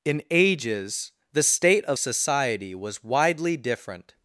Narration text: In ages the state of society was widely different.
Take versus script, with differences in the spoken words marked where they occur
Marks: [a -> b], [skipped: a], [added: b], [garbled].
In ages the state of society was widely different.